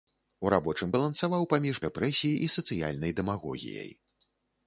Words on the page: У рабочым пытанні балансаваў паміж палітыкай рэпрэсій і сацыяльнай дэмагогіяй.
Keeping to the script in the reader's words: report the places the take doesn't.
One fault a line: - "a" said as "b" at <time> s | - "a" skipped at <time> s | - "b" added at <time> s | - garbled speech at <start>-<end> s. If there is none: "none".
- "пытанні" skipped at 0.9 s
- "палітыкай" skipped at 1.8 s